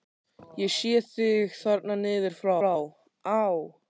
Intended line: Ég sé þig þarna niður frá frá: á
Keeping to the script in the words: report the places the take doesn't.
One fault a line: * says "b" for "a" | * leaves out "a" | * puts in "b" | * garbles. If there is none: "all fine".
all fine